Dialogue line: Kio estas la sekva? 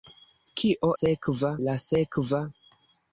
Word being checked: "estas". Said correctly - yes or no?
no